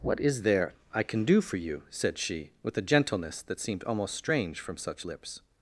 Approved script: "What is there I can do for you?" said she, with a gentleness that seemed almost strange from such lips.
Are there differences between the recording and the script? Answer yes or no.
no